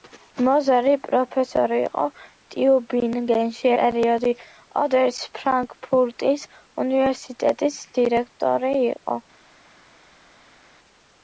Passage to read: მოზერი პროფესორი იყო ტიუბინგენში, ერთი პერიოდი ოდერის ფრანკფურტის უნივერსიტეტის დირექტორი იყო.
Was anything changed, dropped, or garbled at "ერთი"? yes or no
yes